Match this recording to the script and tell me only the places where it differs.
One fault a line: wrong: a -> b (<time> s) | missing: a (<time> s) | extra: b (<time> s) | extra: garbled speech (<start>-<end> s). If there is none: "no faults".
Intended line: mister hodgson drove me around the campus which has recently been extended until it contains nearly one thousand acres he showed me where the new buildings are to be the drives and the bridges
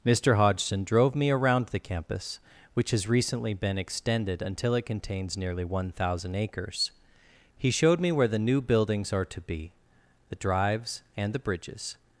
no faults